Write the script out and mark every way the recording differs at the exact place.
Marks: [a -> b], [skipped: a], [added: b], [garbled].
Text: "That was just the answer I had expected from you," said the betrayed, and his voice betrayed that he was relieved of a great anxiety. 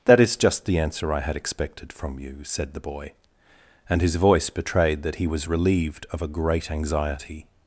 "That [was -> is] just the answer I had expected from you," said the [betrayed, -> boy] and his voice betrayed that he was relieved of a great anxiety.